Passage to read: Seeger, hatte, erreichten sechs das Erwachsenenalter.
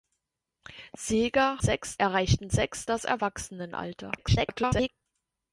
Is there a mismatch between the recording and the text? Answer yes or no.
yes